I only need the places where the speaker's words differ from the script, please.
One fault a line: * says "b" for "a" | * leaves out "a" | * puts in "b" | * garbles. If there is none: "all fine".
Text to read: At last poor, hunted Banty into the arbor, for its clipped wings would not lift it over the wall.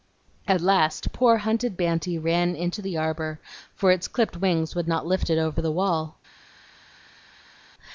* puts in "ran"